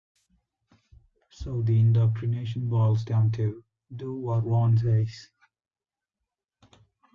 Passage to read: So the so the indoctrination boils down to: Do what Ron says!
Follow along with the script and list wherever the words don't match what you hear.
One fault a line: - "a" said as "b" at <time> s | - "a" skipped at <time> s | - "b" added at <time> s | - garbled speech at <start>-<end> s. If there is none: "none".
- "so the" skipped at 1.8 s